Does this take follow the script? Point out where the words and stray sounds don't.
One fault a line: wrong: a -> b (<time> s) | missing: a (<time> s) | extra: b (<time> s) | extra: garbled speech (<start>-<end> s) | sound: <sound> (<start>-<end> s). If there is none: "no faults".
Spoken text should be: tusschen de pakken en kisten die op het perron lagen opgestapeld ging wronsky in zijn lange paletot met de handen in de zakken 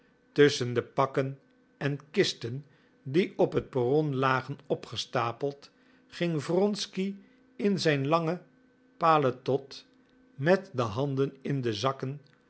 no faults